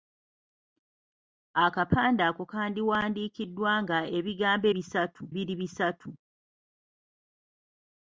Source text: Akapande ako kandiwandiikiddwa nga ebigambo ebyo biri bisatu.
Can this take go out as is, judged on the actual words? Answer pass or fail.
fail